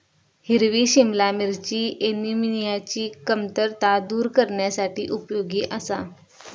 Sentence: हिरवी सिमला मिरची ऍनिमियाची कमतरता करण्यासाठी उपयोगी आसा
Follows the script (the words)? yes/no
no